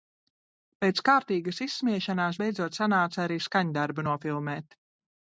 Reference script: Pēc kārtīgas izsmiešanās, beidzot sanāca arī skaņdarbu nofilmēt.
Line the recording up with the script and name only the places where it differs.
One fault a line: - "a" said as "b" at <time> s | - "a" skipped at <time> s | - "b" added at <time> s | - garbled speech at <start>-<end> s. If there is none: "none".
none